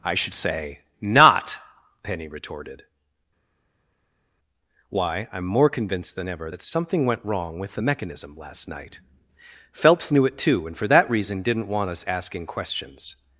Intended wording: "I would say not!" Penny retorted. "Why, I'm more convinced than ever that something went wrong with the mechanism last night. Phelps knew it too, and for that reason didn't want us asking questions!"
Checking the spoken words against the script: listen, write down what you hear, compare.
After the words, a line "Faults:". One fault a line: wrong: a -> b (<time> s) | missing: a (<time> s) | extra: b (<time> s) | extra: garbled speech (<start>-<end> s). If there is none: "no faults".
"I should say not!" Penny retorted. "Why, I'm more convinced than ever that something went wrong with the mechanism last night. Phelps knew it too, and for that reason didn't want us asking questions!"
Faults:
wrong: would -> should (0.1 s)